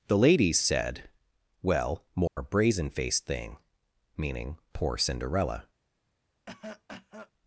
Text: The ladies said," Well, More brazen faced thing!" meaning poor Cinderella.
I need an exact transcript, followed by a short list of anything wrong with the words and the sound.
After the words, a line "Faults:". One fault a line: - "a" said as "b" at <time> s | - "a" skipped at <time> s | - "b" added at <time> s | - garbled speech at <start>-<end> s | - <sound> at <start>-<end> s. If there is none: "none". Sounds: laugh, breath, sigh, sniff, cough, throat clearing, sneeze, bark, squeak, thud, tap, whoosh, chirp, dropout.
The ladies said," Well, More brazen faced thing!" meaning poor Cinderella.
Faults:
- dropout at 2.3-2.4 s
- cough at 6.5-7.3 s